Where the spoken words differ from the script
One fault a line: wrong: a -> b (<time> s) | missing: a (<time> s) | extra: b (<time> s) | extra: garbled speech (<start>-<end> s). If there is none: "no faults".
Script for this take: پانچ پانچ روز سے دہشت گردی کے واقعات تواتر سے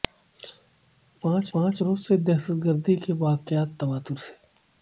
no faults